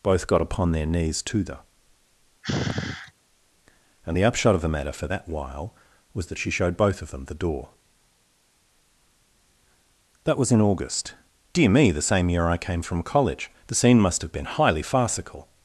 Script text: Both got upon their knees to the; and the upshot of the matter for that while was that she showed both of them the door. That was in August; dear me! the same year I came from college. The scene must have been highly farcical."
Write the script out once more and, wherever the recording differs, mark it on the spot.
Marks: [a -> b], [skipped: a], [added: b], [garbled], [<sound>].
Both got upon their knees to the; [sigh] and the upshot of the matter for that while was that she showed both of them the door. That was in August; dear me! the same year I came from college. The scene must have been highly farcical."